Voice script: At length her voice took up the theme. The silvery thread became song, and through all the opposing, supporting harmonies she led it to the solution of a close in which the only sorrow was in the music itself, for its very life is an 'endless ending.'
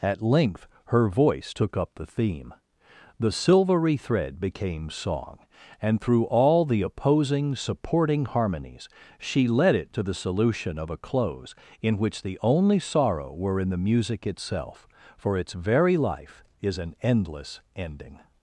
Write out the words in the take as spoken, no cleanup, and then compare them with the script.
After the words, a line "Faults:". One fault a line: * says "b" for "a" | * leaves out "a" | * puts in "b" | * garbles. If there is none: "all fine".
At length her voice took up the theme. The silvery thread became song, and through all the opposing, supporting harmonies she led it to the solution of a close in which the only sorrow were in the music itself, for its very life is an 'endless ending.'
Faults:
* says "were" for "was"